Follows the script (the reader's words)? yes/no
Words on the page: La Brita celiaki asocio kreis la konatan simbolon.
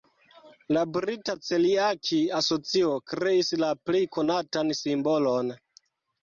no